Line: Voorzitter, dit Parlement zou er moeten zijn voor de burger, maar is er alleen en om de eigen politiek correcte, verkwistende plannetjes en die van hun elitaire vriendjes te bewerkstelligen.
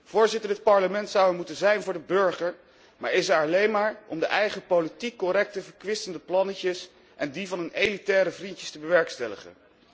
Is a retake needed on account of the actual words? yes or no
yes